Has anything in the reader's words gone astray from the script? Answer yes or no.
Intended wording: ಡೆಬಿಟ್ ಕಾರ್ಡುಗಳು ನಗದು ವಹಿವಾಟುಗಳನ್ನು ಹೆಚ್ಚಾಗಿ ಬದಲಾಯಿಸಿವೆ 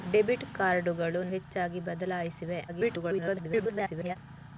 yes